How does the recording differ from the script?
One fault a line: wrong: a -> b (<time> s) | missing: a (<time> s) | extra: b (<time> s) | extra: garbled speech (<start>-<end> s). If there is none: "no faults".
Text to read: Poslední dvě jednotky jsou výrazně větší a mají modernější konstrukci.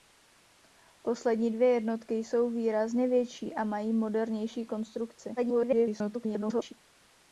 extra: garbled speech (5.4-6.7 s)